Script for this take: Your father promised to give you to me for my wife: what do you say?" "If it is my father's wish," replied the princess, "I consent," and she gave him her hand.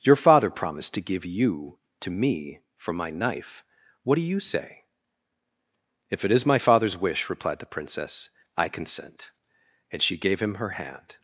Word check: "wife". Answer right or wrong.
wrong